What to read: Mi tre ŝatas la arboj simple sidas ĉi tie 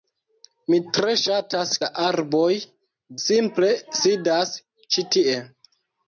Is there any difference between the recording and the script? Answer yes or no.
no